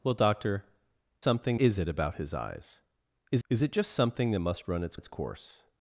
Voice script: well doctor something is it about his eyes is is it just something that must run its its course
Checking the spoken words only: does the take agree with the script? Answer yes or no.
yes